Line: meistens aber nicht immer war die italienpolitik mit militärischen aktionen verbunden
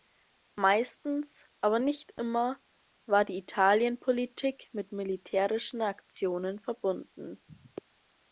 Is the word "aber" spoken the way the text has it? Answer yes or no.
yes